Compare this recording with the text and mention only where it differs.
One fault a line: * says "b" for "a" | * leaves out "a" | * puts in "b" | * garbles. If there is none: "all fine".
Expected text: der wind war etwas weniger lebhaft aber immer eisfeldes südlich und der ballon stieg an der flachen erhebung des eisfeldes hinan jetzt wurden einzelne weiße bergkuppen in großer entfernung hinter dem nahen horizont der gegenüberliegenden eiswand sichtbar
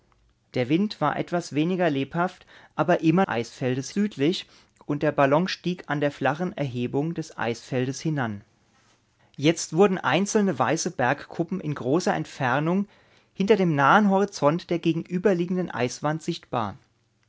all fine